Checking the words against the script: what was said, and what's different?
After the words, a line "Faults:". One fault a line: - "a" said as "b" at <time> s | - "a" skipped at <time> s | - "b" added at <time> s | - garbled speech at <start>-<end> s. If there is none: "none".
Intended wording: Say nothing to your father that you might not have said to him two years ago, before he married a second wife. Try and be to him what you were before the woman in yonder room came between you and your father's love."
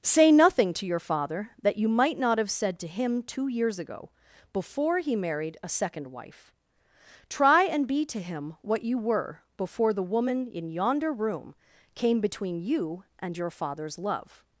Say nothing to your father that you might not have said to him two years ago, before he married a second wife. Try and be to him what you were before the woman in yonder room came between you and your father's love."
Faults:
none